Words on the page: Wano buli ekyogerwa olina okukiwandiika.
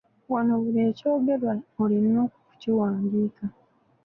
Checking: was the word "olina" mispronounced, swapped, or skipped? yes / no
no